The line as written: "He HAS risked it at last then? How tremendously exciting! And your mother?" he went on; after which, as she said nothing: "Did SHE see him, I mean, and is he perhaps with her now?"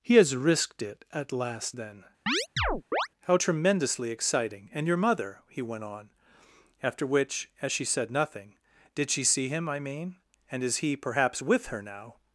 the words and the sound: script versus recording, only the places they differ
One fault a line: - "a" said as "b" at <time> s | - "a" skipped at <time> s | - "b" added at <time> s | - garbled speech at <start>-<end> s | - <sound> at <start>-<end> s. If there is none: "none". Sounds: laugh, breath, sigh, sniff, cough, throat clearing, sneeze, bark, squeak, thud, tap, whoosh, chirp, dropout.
- chirp at 2.3-3.1 s